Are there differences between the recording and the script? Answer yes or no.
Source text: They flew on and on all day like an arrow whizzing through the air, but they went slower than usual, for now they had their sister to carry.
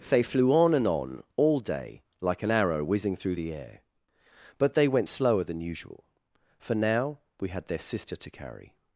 yes